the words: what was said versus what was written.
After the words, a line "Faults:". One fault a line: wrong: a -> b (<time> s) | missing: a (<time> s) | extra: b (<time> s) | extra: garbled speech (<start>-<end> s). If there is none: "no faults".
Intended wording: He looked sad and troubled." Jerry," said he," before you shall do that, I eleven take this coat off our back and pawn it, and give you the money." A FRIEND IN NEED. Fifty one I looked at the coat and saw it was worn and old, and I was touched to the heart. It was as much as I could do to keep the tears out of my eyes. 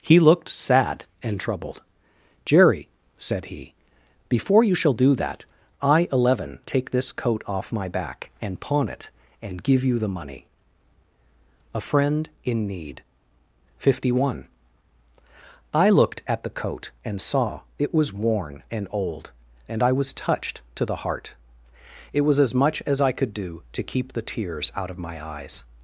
He looked sad and troubled." Jerry," said he," before you shall do that, I eleven take this coat off my back and pawn it, and give you the money." A FRIEND IN NEED. Fifty one I looked at the coat and saw it was worn and old, and I was touched to the heart. It was as much as I could do to keep the tears out of my eyes.
Faults:
wrong: our -> my (7.7 s)